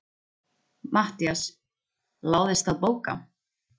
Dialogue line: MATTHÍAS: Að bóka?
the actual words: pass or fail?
fail